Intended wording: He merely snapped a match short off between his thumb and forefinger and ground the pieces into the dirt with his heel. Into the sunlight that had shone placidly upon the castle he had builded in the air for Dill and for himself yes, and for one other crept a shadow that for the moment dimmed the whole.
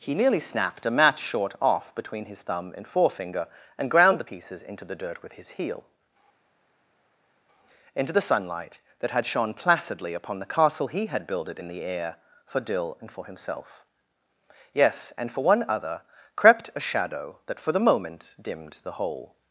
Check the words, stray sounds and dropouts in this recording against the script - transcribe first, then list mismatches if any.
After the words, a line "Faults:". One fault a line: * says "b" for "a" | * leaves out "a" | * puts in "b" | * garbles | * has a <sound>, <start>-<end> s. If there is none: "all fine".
He nearly snapped a match short off between his thumb and forefinger and ground the pieces into the dirt with his heel. Into the sunlight that had shone placidly upon the castle he had builded in the air for Dill and for himself yes, and for one other crept a shadow that for the moment dimmed the whole.
Faults:
* says "nearly" for "merely"